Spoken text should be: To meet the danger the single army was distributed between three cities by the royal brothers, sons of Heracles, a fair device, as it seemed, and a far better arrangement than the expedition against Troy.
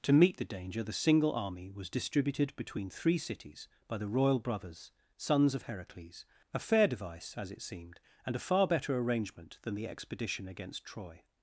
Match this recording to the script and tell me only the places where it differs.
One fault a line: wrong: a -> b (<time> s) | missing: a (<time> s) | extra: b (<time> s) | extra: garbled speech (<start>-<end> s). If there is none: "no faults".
no faults